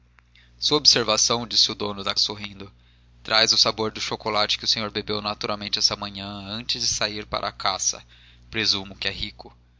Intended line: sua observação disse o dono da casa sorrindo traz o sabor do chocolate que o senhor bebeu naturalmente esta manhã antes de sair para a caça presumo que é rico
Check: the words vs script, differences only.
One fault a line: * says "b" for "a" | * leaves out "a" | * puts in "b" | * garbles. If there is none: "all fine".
* leaves out "casa"